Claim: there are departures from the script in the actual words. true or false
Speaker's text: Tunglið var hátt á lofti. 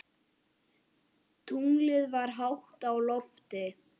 false